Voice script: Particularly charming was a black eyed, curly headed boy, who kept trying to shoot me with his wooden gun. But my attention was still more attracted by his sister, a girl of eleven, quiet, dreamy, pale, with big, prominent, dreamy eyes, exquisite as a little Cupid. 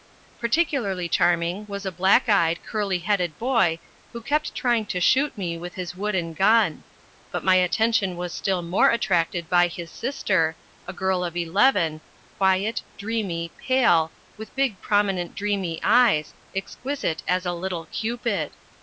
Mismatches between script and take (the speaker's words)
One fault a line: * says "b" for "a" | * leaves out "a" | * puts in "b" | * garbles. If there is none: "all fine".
all fine